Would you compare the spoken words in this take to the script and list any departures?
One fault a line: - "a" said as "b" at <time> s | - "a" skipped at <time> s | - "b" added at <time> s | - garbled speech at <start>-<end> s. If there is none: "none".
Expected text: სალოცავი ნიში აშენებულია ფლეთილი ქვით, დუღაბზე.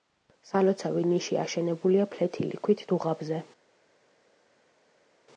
none